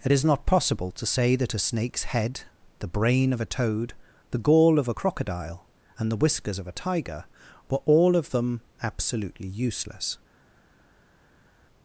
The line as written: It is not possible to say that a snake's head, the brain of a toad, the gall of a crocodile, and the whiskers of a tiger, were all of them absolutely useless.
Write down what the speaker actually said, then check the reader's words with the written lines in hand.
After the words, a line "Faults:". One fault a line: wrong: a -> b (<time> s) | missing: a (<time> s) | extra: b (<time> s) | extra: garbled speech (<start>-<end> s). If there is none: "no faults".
It is not possible to say that a snake's head, the brain of a toad, the gall of a crocodile, and the whiskers of a tiger, were all of them absolutely useless.
Faults:
no faults